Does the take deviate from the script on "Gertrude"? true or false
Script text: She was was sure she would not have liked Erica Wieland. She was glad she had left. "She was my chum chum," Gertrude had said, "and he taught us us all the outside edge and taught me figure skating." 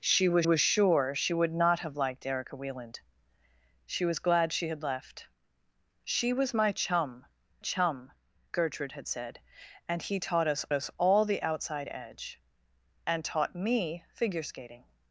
false